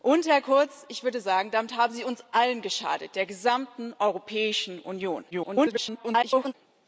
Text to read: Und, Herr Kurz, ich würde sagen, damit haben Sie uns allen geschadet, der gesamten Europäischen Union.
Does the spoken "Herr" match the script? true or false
true